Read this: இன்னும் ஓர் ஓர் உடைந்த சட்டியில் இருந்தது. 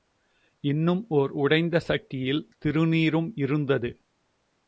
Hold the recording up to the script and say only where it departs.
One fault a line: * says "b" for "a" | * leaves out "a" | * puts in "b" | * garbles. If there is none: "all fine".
* leaves out "ஓர்"
* puts in "திருநீறும்"